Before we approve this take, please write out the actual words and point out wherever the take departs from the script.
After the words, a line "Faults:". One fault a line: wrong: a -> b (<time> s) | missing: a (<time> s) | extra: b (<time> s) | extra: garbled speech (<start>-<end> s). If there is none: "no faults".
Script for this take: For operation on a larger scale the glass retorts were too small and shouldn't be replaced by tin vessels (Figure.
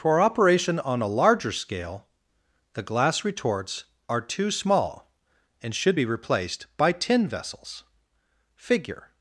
For operation on a larger scale the glass retorts are too small and should be replaced by tin vessels (Figure.
Faults:
wrong: were -> are (4.1 s)
wrong: shouldn't -> should (5.7 s)